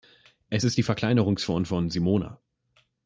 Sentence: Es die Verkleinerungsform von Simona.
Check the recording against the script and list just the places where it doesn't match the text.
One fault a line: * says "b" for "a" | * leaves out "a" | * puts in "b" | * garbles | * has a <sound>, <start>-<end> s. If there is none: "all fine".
* puts in "ist"